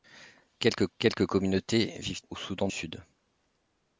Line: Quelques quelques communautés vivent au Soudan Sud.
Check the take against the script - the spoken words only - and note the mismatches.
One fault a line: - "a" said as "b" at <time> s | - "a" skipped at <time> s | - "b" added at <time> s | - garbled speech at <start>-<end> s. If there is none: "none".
none